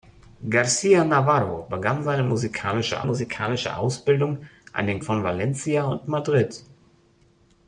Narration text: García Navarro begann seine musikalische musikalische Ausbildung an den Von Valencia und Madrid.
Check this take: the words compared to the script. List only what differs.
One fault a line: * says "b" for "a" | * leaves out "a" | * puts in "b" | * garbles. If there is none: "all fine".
all fine